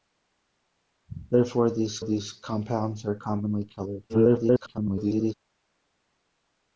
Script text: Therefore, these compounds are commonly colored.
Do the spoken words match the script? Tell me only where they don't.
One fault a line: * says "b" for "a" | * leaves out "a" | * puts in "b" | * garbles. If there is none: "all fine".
* puts in "these"
* garbles